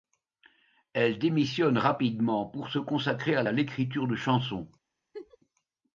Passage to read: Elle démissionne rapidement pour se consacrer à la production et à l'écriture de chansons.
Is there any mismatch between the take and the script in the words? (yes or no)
yes